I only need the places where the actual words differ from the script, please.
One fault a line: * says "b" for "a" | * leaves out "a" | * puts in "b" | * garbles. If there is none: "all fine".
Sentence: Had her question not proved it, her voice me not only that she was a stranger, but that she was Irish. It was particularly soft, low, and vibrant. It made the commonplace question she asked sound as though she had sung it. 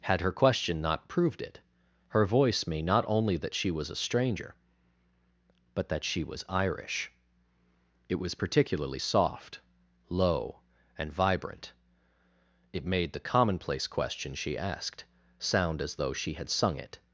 all fine